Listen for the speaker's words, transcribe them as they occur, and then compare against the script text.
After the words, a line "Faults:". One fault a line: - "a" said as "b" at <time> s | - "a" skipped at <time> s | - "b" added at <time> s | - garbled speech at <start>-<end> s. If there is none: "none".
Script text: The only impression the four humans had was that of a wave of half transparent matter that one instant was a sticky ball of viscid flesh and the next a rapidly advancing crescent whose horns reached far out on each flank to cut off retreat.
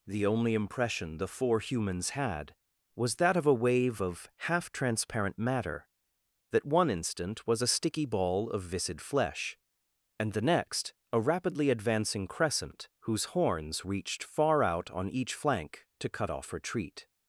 The only impression the four humans had was that of a wave of half transparent matter that one instant was a sticky ball of viscid flesh and the next a rapidly advancing crescent whose horns reached far out on each flank to cut off retreat.
Faults:
none